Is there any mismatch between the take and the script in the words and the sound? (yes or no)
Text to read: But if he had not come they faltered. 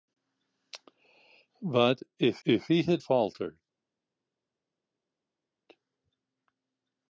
yes